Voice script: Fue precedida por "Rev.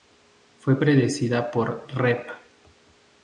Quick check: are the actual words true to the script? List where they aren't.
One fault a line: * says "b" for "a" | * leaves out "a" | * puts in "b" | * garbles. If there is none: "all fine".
all fine